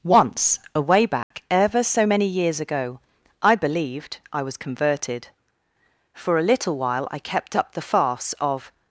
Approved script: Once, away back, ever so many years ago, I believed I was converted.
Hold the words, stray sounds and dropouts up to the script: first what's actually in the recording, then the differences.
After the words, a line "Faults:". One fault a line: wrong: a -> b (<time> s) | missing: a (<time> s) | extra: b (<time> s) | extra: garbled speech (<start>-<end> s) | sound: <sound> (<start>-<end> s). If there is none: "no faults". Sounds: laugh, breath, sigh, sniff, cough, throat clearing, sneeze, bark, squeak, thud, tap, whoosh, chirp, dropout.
Once, away back, ever so many years ago, I believed I was converted. For a little while I kept up the farce of
Faults:
sound: dropout (1.2-1.3 s)
extra: For a little while I kept up the farce of (6.1 s)